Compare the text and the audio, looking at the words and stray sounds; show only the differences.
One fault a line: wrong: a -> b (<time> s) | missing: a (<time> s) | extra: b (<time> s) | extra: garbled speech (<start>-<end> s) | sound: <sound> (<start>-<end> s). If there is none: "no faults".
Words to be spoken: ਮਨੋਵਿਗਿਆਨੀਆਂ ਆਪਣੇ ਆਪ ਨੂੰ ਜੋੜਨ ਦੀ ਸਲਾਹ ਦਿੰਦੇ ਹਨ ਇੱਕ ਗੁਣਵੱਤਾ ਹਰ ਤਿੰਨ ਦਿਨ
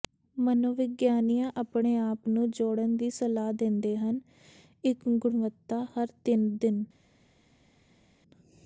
no faults